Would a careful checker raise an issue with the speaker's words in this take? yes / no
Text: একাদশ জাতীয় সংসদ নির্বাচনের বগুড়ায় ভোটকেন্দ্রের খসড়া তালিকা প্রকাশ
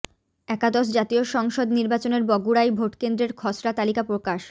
no